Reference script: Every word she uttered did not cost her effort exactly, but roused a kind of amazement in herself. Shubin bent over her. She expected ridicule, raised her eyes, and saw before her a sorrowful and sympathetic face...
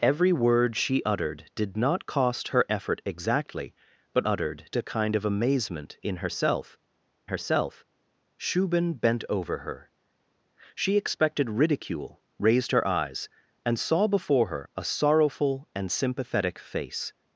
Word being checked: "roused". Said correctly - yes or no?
no